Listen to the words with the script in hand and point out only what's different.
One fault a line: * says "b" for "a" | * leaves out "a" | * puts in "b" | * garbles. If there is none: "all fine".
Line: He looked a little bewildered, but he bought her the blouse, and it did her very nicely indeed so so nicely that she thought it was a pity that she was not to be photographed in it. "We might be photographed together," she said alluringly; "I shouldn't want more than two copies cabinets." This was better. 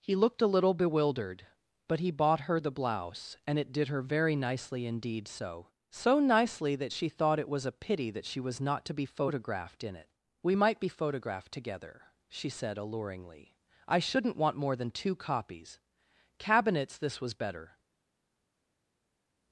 all fine